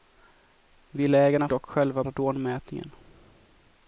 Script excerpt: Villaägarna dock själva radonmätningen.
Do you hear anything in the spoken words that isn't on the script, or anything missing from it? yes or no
no